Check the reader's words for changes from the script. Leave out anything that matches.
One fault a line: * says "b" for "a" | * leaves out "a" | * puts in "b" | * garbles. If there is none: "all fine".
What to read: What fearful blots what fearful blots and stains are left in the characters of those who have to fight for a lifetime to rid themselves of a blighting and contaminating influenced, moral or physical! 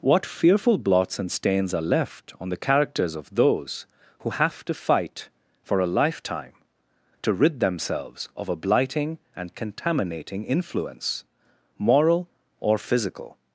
* leaves out "what fearful blots"
* says "on" for "in"
* says "influence" for "influenced"